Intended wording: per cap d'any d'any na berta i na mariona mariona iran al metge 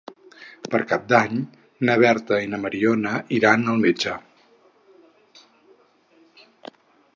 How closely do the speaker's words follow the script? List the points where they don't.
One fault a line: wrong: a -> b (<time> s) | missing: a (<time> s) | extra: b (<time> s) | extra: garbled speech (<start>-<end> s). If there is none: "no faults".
missing: d'any (1.4 s)
missing: mariona (3.1 s)